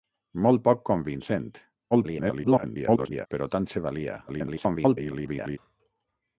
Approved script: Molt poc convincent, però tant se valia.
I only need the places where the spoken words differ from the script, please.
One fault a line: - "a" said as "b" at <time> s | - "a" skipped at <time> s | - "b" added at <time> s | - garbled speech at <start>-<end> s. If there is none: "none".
- garbled speech at 1.9-3.3 s
- garbled speech at 4.3-5.6 s